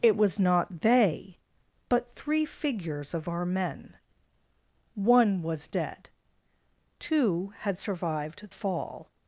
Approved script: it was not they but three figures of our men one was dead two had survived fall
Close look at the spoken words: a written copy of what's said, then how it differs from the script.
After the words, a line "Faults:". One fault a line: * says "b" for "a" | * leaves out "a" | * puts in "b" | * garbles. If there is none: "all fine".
it was not they but three figures of our men one was dead two had survived fall
Faults:
all fine